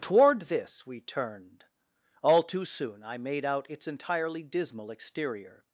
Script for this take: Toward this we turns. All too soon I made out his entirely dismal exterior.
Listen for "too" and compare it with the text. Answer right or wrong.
right